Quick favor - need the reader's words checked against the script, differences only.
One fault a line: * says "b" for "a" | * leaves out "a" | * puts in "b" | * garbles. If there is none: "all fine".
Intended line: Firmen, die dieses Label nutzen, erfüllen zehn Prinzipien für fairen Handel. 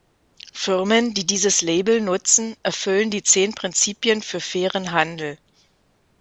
* puts in "die"